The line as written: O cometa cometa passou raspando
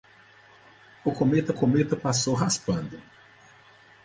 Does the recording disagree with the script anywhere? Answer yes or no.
no